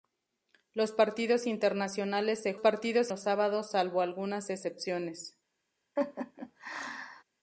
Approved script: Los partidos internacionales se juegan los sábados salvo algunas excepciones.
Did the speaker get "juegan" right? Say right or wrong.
wrong